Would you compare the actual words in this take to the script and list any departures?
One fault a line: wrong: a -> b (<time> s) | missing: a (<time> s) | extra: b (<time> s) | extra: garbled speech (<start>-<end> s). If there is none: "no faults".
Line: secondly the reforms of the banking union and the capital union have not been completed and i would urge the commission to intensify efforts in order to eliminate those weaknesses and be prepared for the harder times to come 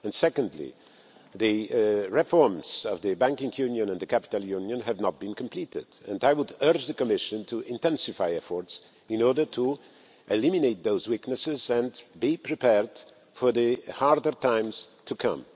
no faults